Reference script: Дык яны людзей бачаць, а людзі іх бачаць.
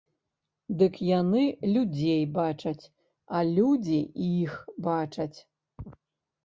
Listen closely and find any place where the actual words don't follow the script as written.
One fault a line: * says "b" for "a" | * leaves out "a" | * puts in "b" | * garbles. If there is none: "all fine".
all fine